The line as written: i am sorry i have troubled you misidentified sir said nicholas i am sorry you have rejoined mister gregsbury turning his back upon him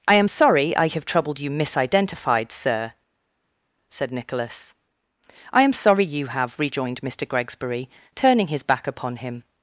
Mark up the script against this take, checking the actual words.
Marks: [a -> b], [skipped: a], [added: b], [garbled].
i am sorry i have troubled you misidentified sir said nicholas i am sorry you have rejoined mister gregsbury turning his back upon him